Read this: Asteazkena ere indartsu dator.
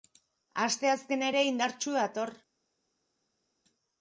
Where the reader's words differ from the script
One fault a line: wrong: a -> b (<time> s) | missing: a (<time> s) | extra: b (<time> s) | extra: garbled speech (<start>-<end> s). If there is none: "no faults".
no faults